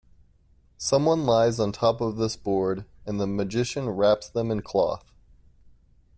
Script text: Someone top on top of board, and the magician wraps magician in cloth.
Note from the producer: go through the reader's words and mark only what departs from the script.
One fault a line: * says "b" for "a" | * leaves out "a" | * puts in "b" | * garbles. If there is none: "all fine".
* says "lies" for "top"
* puts in "this"
* says "them" for "magician"